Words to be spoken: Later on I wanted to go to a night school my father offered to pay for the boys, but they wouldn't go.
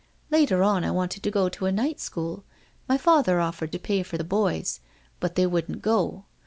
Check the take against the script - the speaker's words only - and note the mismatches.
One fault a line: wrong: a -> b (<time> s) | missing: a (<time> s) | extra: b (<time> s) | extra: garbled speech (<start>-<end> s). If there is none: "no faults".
no faults